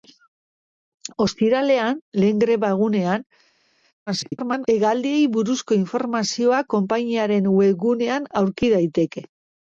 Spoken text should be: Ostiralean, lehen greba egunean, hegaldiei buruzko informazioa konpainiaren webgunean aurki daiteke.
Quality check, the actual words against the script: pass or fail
fail